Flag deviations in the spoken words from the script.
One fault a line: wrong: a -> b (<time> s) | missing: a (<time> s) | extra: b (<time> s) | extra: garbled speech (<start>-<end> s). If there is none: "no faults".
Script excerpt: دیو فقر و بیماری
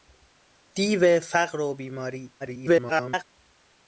extra: garbled speech (2.4-3.2 s)